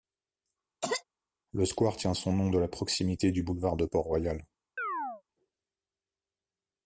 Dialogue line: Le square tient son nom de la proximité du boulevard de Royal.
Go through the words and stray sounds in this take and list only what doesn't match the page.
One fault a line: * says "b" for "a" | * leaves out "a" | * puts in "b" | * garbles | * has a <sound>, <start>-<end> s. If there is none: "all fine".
* has a cough, 0.8-1.0 s
* puts in "Port"
* has a chirp, 4.8-5.2 s